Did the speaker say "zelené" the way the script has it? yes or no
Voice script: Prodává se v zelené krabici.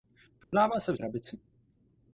no